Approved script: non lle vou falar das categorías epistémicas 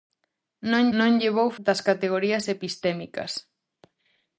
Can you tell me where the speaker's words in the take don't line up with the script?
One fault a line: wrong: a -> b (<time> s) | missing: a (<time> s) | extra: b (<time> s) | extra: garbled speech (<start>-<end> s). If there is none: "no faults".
extra: non (1.0 s)
missing: falar (1.5 s)